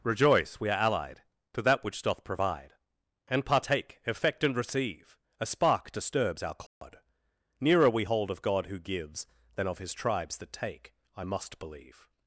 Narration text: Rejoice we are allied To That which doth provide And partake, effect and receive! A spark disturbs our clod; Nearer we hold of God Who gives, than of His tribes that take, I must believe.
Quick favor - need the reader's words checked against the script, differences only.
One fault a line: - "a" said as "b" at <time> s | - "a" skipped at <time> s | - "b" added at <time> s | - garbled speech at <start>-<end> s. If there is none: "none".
none